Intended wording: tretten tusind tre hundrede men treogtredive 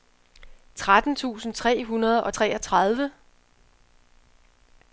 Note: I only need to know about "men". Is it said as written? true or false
false